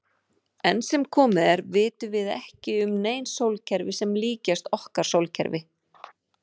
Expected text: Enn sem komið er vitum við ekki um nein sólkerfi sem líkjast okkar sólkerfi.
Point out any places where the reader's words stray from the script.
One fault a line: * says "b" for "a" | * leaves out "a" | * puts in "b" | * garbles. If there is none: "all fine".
all fine